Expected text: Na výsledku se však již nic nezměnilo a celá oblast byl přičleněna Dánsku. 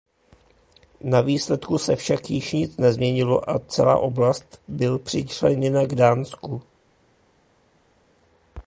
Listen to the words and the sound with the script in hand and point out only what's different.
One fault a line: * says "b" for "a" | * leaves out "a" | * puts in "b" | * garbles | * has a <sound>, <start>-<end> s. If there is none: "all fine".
* puts in "k"